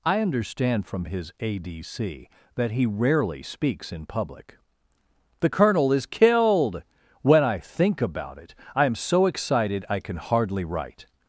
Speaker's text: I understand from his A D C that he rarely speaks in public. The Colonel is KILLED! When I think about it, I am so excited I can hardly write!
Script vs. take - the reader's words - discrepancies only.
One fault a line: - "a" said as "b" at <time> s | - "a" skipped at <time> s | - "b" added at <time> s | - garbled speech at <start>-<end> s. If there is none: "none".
none